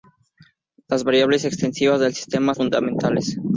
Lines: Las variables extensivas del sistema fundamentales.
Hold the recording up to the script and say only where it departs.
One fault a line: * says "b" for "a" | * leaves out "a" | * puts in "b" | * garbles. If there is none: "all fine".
all fine